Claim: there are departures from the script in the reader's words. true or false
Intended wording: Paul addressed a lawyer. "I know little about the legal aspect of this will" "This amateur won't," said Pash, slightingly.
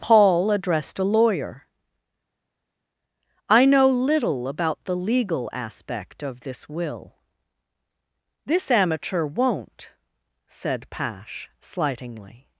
false